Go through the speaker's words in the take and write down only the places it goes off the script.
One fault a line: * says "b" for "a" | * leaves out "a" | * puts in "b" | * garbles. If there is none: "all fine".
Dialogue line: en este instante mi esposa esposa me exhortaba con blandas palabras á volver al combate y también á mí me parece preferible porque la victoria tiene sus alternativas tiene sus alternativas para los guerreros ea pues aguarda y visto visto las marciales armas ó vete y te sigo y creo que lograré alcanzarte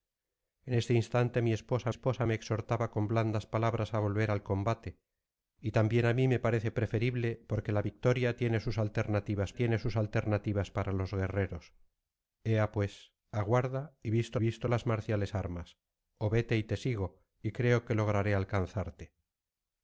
all fine